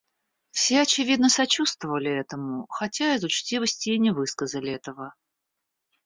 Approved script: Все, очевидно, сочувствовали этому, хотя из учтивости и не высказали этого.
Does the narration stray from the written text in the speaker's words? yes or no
no